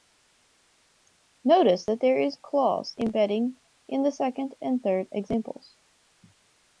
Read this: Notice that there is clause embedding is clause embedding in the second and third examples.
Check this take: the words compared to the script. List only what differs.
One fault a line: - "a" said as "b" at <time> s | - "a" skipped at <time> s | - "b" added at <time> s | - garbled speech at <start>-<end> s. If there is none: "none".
- "is clause embedding" skipped at 3.6 s